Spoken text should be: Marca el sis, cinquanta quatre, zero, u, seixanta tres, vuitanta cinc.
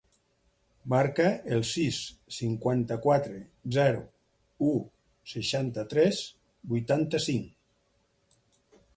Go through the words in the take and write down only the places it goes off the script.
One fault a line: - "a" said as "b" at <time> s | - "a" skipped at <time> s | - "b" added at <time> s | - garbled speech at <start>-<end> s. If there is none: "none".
none